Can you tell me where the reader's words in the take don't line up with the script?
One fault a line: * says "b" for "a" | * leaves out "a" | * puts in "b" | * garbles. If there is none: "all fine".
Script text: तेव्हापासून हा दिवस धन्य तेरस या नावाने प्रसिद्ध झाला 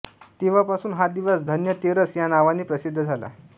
all fine